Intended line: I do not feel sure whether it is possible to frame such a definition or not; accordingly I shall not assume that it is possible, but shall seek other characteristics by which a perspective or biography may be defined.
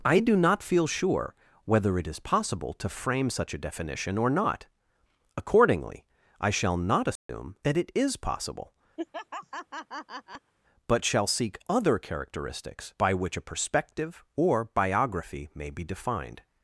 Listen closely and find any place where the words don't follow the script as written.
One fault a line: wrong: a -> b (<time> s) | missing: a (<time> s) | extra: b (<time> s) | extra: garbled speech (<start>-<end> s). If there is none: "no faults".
no faults